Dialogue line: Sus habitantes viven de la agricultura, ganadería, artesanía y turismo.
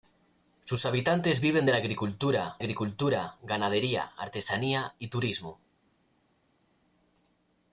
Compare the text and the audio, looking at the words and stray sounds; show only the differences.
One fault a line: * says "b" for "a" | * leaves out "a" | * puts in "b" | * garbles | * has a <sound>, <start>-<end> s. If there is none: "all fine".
* puts in "agricultura"